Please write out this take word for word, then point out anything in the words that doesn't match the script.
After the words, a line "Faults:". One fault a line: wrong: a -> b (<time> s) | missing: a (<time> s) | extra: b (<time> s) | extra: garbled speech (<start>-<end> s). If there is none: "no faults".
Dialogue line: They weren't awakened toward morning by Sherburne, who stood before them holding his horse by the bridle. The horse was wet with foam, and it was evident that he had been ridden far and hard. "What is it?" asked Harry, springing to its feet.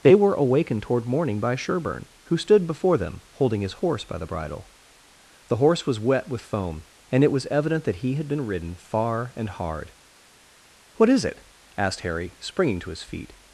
They were awakened toward morning by Sherburne, who stood before them holding his horse by the bridle. The horse was wet with foam, and it was evident that he had been ridden far and hard. "What is it?" asked Harry, springing to his feet.
Faults:
wrong: weren't -> were (0.1 s)
wrong: its -> his (12.9 s)